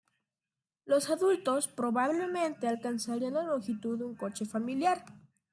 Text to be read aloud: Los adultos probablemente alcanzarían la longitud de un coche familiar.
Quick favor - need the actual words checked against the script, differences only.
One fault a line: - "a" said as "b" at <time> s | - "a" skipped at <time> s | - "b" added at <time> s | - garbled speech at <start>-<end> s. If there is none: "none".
none